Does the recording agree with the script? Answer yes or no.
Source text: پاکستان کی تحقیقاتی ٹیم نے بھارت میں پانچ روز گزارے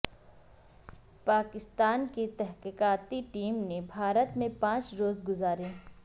yes